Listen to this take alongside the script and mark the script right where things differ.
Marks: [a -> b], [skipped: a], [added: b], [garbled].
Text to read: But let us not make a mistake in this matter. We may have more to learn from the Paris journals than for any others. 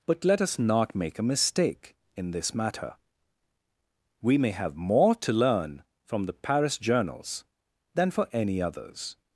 But let us not make a mistake in this matter. We may have more to learn from the Paris journals than for any others.